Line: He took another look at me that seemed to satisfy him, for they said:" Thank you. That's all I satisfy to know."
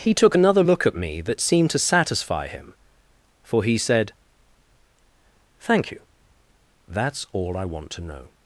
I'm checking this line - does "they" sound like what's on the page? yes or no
no